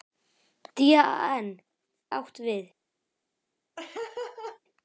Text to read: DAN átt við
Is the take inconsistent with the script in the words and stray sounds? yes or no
yes